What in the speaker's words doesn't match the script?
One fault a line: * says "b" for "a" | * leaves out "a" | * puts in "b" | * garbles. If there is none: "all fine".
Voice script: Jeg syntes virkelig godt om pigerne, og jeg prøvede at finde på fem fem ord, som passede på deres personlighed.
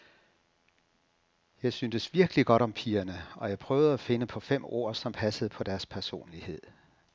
* leaves out "fem"